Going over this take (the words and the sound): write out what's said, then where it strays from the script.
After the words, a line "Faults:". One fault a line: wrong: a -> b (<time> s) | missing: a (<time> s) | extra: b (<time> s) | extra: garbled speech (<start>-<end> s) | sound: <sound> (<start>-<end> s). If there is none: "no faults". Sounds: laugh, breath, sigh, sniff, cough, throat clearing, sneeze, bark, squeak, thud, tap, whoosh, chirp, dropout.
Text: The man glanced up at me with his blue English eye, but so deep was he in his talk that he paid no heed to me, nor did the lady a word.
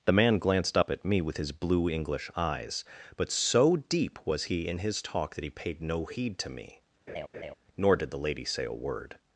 The man glanced up at me with his blue English eyes, but so deep was he in his talk that he paid no heed to me, nor did the lady say a word.
Faults:
wrong: eye -> eyes (2.4 s)
sound: laugh (7.1-7.5 s)
extra: say (8.4 s)